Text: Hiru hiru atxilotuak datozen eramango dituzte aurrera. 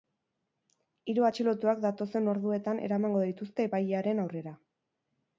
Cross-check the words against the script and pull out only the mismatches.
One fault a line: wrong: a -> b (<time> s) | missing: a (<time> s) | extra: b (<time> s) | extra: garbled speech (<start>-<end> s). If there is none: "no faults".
missing: hiru (1.3 s)
extra: orduetan (2.4 s)
extra: epailearen (3.7 s)